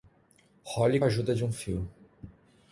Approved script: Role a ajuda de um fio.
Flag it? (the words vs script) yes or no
no